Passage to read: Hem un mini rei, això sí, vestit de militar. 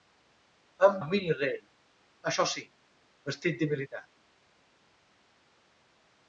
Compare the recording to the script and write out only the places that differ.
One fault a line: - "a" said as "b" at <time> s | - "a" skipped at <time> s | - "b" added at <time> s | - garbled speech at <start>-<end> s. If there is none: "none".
none